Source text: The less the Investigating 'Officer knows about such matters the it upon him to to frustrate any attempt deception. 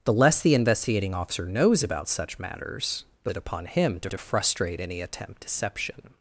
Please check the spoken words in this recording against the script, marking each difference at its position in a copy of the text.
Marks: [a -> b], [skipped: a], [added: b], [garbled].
The less the Investigating 'Officer knows about such matters the it upon him to to frustrate any attempt deception.